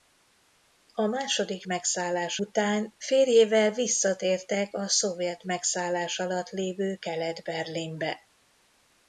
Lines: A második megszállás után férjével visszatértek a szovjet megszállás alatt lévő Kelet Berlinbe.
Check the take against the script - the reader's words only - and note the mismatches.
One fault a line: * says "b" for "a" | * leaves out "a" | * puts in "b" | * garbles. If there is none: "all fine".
all fine